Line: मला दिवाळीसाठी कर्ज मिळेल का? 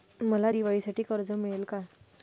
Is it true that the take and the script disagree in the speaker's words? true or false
false